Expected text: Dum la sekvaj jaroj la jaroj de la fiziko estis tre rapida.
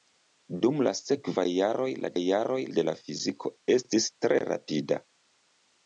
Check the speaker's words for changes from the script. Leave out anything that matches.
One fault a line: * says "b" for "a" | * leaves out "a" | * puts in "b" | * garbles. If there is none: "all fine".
all fine